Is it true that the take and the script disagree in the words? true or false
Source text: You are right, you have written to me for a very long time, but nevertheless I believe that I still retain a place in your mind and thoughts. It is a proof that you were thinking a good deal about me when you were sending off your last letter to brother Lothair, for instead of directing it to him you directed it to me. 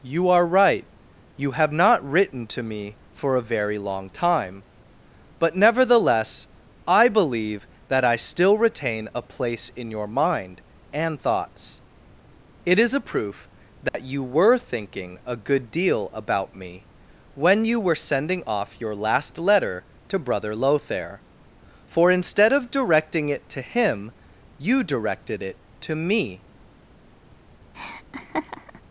true